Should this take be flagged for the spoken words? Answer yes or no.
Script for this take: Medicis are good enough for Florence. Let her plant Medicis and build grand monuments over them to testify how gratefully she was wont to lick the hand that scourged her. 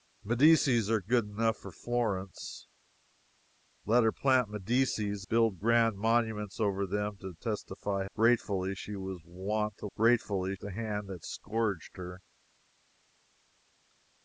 yes